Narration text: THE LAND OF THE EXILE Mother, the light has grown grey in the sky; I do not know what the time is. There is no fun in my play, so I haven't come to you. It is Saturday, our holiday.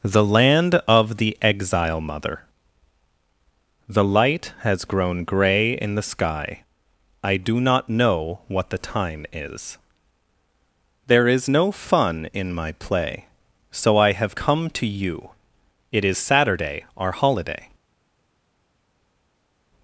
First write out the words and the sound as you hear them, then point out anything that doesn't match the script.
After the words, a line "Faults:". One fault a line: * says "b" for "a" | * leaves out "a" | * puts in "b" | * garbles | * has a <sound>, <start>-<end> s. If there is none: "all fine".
THE LAND OF THE EXILE Mother, the light has grown grey in the sky; I do not know what the time is. There is no fun in my play, so I have come to you. It is Saturday, our holiday.
Faults:
* says "have" for "haven't"